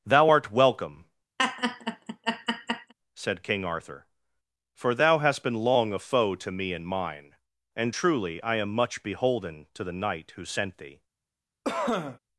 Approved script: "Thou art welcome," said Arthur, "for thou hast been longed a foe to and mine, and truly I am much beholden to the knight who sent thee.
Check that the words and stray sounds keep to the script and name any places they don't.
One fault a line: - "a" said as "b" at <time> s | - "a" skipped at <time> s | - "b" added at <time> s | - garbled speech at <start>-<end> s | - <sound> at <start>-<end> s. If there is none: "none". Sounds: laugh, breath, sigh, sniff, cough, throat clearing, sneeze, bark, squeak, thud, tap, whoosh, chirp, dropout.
- laugh at 1.4-2.9 s
- "King" added at 3.4 s
- "longed" said as "long" at 5.6 s
- "me" added at 6.5 s
- cough at 11.6-12.2 s